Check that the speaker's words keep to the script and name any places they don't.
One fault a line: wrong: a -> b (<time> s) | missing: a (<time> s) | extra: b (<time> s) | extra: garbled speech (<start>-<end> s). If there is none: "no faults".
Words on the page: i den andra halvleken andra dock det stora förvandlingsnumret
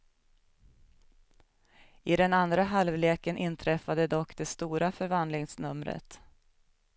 wrong: andra -> inträffade (3.3 s)